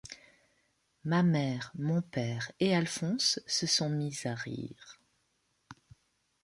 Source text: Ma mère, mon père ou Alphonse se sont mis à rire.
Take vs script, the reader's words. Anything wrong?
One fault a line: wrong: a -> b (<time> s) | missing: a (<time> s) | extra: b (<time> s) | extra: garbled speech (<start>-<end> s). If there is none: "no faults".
wrong: ou -> et (2.6 s)